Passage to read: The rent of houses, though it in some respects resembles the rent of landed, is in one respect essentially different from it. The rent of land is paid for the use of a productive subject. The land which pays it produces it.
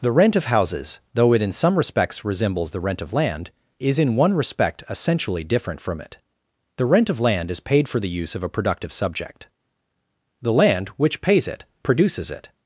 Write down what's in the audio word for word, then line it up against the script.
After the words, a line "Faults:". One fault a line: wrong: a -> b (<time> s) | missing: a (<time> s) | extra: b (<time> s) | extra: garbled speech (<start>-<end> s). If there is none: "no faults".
The rent of houses, though it in some respects resembles the rent of land, is in one respect essentially different from it. The rent of land is paid for the use of a productive subject. The land which pays it produces it.
Faults:
wrong: landed -> land (3.1 s)